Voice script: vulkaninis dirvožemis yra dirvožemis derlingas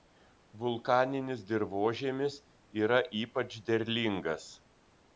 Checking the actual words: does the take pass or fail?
fail